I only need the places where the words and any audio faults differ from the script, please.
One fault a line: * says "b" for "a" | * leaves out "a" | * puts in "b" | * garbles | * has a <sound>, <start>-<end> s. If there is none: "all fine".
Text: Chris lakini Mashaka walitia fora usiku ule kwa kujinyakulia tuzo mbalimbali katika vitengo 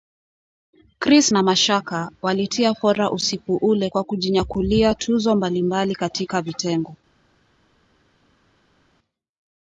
* says "na" for "lakini"